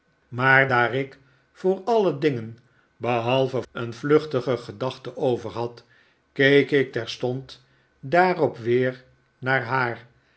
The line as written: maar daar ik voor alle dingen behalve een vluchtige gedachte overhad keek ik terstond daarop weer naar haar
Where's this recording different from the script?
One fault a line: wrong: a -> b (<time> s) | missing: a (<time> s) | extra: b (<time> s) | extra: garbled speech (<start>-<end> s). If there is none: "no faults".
no faults